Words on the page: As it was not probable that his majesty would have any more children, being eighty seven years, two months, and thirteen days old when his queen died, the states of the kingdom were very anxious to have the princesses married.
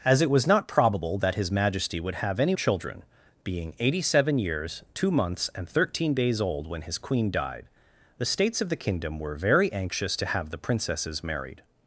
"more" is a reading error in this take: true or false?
true